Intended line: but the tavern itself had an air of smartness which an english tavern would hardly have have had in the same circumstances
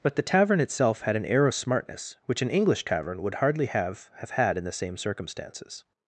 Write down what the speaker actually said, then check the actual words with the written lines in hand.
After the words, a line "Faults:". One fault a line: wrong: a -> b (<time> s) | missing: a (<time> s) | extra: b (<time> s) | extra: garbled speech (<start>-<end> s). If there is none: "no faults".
but the tavern itself had an air of smartness which an english tavern would hardly have have had in the same circumstances
Faults:
no faults